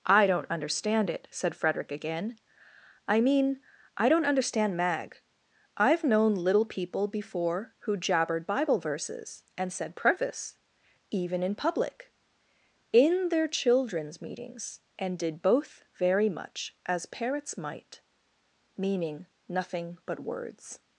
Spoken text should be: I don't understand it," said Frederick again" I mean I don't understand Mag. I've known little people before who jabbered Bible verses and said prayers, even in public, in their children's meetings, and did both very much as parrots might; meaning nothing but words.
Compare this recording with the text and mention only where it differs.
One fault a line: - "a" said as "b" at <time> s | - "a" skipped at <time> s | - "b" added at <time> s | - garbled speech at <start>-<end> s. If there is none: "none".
- "prayers" said as "preface" at 10.0 s